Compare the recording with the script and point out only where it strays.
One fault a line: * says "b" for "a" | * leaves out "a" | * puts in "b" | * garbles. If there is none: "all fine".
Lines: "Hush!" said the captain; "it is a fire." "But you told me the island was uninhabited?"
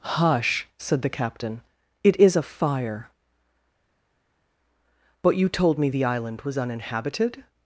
all fine